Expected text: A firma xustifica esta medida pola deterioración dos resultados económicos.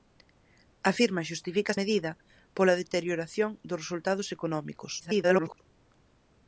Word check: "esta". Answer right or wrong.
wrong